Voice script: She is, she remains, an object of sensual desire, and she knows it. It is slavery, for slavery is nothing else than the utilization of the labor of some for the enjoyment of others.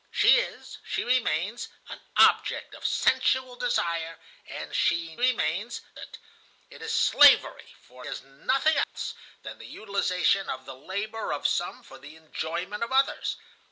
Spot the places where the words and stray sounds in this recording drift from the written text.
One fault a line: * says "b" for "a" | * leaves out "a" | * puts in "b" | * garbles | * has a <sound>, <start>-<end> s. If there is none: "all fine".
* says "remains" for "knows"
* leaves out "slavery"
* has a dropout, 8.8-8.9 s